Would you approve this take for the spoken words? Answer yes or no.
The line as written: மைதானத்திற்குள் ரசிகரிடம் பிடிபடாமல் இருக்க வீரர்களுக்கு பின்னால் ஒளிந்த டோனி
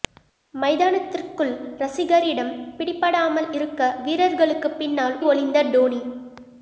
yes